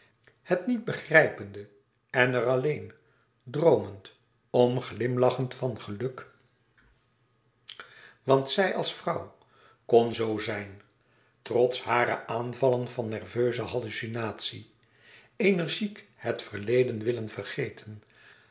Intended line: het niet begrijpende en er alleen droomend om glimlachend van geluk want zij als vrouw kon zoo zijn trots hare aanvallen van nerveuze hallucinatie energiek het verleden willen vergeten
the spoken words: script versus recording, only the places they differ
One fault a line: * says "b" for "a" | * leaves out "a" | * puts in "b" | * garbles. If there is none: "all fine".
all fine